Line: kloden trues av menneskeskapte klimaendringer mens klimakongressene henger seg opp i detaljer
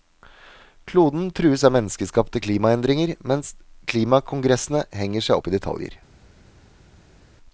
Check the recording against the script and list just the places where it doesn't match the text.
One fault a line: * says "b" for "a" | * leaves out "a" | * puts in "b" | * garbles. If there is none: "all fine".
all fine